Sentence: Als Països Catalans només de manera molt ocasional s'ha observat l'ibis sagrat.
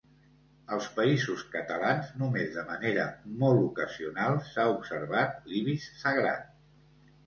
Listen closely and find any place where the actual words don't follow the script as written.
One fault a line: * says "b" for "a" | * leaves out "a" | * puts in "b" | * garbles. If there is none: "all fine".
all fine